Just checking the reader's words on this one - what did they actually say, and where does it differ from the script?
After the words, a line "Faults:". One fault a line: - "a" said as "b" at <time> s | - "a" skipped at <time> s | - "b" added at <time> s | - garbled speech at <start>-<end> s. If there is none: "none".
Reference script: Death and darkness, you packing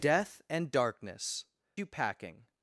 Death and darkness, you packing
Faults:
none